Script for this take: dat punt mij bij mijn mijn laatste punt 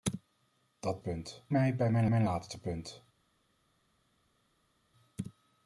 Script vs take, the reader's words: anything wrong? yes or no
no